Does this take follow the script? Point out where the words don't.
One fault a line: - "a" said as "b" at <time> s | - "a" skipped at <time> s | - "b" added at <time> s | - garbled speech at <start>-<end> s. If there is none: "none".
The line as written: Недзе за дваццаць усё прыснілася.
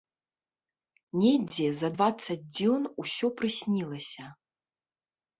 - "дзён" added at 2.6 s